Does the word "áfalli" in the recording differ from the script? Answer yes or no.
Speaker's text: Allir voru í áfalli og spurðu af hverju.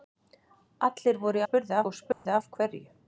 yes